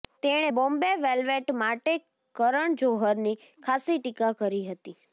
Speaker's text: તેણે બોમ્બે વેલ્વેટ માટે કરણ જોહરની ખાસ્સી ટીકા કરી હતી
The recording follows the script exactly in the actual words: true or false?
true